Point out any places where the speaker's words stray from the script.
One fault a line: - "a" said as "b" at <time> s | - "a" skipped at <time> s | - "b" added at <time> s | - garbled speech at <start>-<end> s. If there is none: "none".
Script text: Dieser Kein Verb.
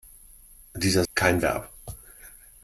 none